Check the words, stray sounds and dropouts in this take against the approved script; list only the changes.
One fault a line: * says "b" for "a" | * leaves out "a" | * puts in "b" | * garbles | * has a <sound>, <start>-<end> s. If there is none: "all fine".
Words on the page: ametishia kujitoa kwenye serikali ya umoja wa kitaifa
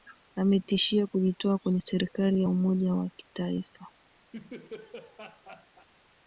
* has a laugh, 4.3-5.9 s